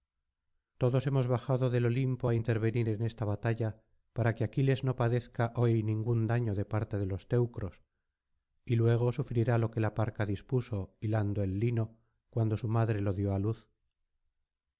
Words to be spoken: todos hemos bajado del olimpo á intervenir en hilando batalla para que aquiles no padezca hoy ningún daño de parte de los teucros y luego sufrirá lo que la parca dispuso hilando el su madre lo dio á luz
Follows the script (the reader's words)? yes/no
no